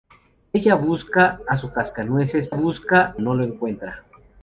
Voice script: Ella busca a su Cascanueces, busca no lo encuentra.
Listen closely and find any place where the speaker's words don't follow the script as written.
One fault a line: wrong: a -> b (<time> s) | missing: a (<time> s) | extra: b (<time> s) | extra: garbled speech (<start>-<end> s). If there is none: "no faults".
no faults